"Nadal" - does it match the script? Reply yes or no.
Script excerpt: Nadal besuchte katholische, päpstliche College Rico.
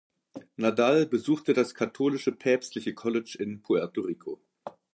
yes